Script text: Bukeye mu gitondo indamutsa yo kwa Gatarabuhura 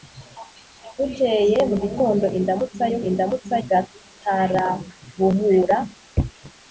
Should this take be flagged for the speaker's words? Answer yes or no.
yes